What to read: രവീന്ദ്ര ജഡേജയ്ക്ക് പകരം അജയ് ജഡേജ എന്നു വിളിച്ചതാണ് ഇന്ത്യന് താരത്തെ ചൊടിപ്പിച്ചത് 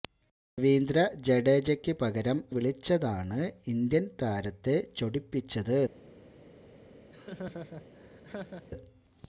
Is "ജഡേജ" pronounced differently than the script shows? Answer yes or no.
yes